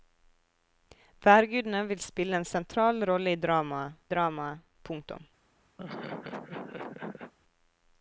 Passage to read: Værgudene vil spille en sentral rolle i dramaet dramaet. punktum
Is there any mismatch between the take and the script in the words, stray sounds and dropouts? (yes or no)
yes